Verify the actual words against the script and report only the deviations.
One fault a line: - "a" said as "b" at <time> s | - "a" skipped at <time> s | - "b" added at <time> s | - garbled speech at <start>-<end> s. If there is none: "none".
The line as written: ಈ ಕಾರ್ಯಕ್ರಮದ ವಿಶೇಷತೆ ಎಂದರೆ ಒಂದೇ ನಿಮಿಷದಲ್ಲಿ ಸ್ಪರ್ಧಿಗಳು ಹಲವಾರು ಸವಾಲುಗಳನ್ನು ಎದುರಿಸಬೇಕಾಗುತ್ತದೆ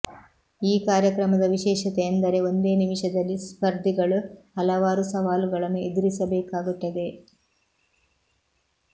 none